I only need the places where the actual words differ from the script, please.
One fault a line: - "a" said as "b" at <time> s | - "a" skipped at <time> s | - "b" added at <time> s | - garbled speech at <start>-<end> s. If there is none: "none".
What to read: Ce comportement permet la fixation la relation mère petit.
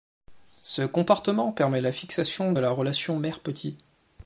none